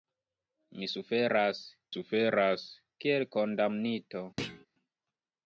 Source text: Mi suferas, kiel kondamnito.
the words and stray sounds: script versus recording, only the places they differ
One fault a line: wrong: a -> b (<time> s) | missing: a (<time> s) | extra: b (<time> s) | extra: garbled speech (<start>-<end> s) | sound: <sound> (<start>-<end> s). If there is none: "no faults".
extra: suferas (1.9 s)
sound: thud (4.4-4.7 s)